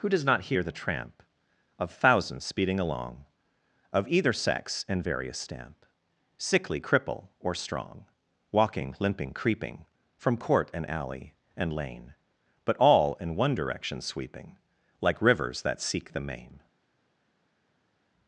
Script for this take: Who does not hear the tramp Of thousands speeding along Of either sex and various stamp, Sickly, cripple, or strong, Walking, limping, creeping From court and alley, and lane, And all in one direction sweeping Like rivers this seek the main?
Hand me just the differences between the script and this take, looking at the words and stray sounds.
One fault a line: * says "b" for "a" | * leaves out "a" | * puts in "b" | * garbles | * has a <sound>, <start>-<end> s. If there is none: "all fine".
* says "But" for "And"
* says "that" for "this"